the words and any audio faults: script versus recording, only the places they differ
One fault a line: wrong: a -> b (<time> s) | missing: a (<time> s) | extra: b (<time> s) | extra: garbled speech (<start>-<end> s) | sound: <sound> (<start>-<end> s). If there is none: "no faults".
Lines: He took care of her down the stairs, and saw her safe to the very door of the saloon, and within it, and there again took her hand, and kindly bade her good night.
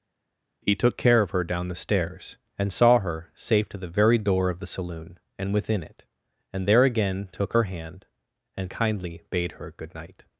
no faults